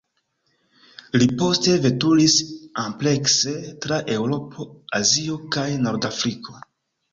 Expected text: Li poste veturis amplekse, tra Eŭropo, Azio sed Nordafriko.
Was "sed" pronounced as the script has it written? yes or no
no